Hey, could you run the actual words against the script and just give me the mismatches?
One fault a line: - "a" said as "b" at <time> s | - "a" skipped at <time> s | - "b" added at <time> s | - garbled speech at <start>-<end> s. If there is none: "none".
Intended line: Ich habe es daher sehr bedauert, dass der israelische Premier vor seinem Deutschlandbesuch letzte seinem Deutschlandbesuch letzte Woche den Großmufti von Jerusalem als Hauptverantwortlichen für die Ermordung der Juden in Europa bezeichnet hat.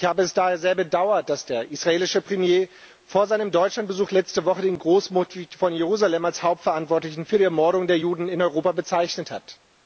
- "seinem Deutschlandbesuch letzte" skipped at 4.5 s